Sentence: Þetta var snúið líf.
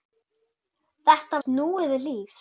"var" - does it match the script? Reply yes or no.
no